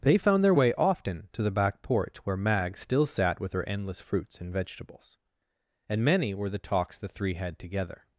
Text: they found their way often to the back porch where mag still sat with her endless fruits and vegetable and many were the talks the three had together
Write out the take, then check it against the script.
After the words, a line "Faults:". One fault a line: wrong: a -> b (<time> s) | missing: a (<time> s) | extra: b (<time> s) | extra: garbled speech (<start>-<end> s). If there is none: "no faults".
they found their way often to the back porch where mag still sat with her endless fruits and vegetables and many were the talks the three had together
Faults:
wrong: vegetable -> vegetables (4.5 s)